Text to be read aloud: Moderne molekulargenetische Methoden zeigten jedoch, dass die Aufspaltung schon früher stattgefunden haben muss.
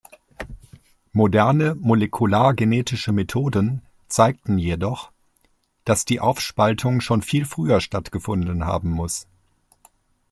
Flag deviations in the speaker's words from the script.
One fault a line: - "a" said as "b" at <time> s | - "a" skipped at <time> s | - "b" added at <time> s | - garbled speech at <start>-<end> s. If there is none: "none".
- "viel" added at 7.2 s